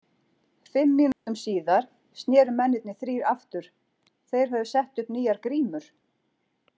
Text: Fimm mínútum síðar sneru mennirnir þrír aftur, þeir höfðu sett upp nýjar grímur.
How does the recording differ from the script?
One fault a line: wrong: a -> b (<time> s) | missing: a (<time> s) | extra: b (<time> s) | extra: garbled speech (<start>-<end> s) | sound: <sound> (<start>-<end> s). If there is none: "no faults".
sound: dropout (1.1-1.3 s)